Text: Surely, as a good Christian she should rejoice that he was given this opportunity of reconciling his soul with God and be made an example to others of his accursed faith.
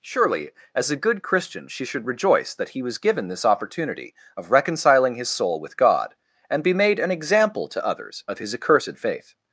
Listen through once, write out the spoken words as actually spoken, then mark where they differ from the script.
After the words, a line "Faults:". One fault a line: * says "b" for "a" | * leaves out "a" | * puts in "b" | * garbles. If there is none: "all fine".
Surely, as a good Christian she should rejoice that he was given this opportunity of reconciling his soul with God and be made an example to others of his accursed faith.
Faults:
all fine